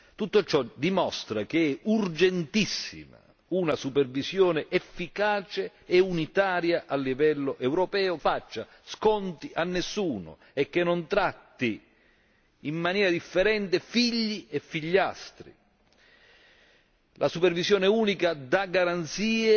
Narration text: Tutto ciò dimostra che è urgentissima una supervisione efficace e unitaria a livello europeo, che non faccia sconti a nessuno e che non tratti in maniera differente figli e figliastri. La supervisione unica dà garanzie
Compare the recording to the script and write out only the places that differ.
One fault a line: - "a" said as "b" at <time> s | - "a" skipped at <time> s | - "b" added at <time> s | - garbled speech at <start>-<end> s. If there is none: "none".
- "che non" skipped at 8.2 s